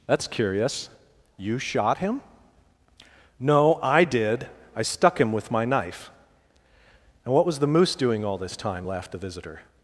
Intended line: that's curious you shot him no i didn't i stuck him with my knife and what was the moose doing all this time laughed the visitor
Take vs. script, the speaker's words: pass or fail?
fail